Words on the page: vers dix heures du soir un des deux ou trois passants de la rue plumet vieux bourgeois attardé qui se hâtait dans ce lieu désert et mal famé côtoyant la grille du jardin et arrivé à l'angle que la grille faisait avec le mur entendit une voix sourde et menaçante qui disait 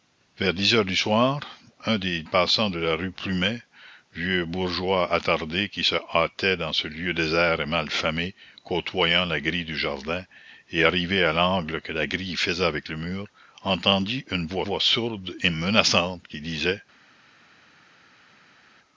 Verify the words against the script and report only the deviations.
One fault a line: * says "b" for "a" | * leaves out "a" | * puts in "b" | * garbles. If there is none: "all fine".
* leaves out "deux ou trois"
* puts in "voix"